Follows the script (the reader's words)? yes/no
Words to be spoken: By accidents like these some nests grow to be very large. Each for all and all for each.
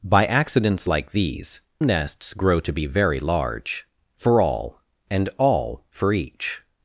no